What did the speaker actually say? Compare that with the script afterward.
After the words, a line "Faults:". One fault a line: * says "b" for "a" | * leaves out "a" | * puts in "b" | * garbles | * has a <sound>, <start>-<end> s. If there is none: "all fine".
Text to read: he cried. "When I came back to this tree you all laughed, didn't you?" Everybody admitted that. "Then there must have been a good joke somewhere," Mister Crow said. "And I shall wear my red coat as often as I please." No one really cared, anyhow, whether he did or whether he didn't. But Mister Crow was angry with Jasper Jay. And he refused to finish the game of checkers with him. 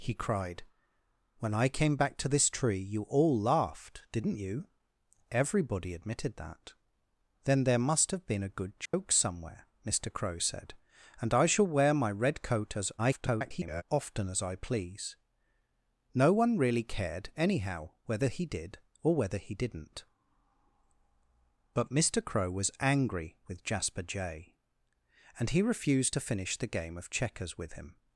he cried. "When I came back to this tree you all laughed, didn't you?" Everybody admitted that. "Then there must have been a good joke somewhere," Mister Crow said. "And I shall wear my red coat as [garbled] often as I please." No one really cared, anyhow, whether he did or whether he didn't. But Mister Crow was angry with Jasper Jay. And he refused to finish the game of checkers with him.
Faults:
* has a dropout, 8.9-8.9 s
* garbles